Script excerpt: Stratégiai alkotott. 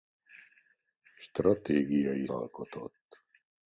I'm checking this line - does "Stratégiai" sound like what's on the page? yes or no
yes